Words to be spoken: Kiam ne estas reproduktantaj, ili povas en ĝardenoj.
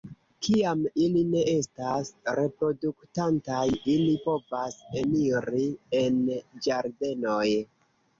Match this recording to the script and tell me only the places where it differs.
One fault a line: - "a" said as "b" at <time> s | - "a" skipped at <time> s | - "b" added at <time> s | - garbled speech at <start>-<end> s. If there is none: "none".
- "ili" added at 1.1 s
- "eniri" added at 5.0 s